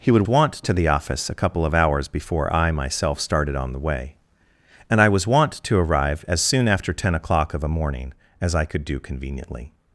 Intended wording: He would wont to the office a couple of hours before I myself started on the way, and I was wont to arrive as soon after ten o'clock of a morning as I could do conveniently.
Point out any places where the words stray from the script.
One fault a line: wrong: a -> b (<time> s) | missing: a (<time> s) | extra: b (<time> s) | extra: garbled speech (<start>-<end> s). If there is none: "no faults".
no faults